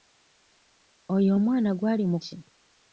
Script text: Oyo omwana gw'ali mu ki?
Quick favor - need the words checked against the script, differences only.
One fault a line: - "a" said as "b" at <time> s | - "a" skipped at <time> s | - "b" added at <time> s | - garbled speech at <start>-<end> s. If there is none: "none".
none